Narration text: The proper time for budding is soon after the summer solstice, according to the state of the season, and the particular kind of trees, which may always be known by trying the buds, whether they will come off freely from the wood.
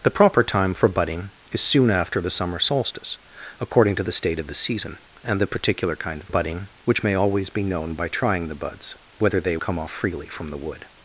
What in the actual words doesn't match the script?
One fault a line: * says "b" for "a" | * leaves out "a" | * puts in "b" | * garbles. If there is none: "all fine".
* says "budding" for "trees"
* leaves out "will"